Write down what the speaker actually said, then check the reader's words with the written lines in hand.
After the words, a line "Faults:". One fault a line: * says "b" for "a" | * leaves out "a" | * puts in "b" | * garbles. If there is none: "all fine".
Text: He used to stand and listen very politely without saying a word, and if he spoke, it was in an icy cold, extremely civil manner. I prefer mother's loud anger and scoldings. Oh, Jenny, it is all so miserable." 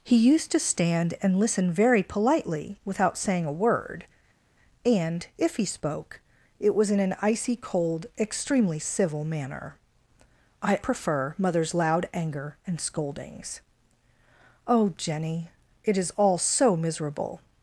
He used to stand and listen very politely without saying a word, and if he spoke, it was in an icy cold, extremely civil manner. I prefer mother's loud anger and scoldings. Oh, Jenny, it is all so miserable."
Faults:
all fine